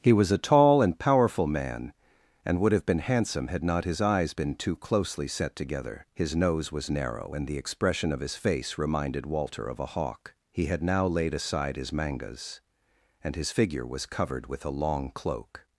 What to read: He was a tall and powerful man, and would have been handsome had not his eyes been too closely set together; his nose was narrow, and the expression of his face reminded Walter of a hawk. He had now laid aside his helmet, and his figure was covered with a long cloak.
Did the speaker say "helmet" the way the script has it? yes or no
no